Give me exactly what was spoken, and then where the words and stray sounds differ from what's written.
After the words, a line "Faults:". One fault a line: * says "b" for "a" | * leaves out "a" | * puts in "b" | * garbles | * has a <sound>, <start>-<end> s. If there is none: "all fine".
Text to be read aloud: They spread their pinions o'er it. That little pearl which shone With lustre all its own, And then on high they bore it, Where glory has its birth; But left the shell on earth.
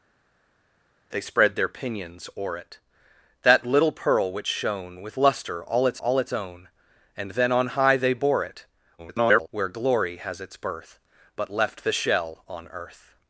They spread their pinions o'er it. That little pearl which shone With lustre all its all its own, And then on high they bore it, [garbled] Where glory has its birth; But left the shell on earth.
Faults:
* puts in "all its"
* garbles